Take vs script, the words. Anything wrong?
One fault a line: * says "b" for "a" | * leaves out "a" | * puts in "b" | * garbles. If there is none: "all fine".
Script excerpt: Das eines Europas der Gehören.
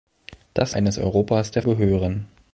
all fine